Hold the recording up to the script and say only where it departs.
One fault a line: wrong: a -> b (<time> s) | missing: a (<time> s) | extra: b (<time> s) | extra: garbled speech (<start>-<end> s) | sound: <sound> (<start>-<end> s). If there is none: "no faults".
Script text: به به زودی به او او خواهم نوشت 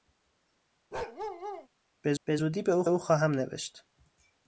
sound: bark (0.9-1.7 s)